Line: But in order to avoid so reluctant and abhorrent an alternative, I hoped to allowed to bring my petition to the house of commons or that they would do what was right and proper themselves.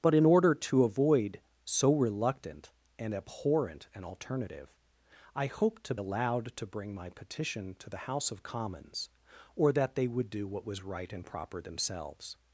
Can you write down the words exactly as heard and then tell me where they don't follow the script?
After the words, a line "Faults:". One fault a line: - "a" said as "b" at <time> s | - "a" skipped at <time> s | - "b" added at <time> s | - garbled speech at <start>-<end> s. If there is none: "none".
But in order to avoid so reluctant and abhorrent an alternative, I hoped to allowed to bring my petition to the house of commons or that they would do what was right and proper themselves.
Faults:
none